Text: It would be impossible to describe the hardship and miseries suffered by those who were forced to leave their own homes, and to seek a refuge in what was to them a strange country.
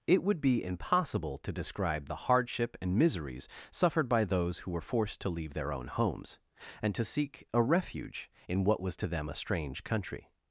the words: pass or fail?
pass